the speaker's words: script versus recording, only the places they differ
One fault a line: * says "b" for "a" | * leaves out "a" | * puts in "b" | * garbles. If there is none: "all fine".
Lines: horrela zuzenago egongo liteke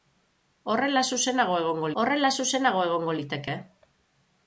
* puts in "horrela zuzenago egongo"